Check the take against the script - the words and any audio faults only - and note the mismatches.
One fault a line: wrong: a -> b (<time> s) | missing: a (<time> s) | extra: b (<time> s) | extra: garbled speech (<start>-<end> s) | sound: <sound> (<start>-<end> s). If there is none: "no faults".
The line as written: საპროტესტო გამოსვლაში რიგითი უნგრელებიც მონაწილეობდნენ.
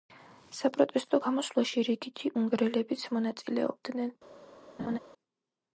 sound: laugh (4.8-5.0 s)